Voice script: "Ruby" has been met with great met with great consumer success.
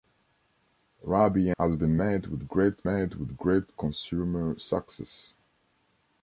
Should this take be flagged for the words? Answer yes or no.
no